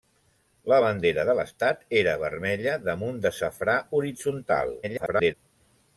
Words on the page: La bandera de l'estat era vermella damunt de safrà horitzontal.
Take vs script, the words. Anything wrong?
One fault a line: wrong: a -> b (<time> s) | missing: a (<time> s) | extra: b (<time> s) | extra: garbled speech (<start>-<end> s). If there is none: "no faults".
extra: garbled speech (4.8-5.3 s)